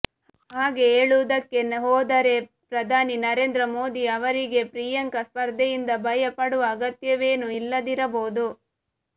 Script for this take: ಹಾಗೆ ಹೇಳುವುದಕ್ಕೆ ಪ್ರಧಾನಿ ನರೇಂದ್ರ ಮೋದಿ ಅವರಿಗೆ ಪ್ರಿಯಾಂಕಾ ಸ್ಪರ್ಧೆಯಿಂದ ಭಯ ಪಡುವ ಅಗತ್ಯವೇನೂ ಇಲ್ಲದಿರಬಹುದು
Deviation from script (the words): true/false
true